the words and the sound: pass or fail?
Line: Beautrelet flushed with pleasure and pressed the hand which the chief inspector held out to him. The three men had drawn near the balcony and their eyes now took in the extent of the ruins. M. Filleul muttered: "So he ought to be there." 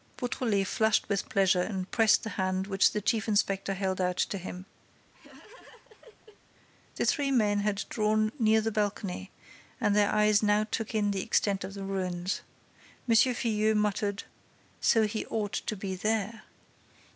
fail